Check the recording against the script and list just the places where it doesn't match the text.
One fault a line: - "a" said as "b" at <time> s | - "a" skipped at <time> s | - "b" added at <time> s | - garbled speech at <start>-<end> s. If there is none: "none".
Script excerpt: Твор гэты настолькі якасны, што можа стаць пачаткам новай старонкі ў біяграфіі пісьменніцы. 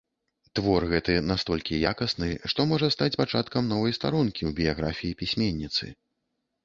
none